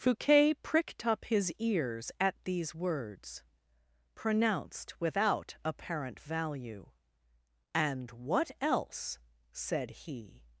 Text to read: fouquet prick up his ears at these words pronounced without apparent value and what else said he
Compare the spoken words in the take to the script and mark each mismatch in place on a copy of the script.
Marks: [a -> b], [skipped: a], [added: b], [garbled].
fouquet [prick -> pricked] up his ears at these words pronounced without apparent value and what else said he